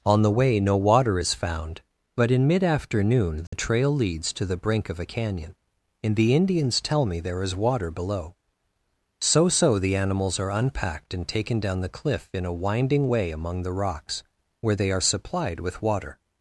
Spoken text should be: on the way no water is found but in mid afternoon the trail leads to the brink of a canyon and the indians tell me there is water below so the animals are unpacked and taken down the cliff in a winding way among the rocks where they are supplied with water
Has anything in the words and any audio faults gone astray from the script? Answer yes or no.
yes